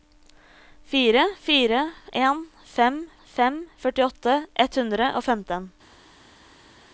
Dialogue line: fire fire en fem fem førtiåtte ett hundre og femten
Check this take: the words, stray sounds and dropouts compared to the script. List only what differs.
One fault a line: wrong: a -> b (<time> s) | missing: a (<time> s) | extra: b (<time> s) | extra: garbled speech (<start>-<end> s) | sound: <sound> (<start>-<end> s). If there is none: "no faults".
no faults